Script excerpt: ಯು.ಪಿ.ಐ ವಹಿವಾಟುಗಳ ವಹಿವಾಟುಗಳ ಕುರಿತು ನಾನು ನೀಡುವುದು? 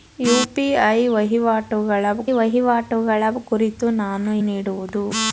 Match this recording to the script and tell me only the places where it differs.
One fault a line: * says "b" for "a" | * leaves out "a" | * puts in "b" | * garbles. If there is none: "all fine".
all fine